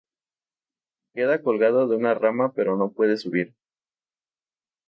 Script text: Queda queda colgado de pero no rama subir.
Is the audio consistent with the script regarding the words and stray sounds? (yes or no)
no